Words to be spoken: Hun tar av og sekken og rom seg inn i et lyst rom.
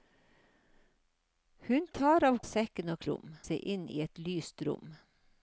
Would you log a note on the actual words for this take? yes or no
no